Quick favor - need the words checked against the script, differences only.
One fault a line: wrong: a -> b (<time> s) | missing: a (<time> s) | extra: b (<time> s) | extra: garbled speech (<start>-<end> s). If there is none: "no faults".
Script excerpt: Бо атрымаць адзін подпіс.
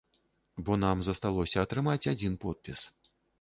extra: нам засталося (0.8 s)